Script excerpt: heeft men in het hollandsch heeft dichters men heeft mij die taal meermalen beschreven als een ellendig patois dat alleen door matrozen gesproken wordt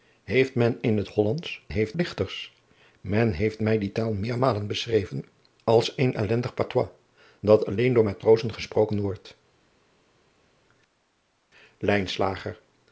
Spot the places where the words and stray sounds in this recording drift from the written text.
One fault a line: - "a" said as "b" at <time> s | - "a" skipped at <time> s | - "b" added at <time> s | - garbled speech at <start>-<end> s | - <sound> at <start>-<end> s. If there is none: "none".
none